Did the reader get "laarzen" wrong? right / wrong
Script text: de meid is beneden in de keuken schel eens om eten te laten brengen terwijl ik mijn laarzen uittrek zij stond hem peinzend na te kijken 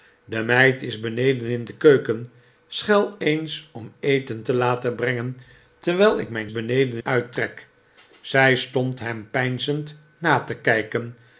wrong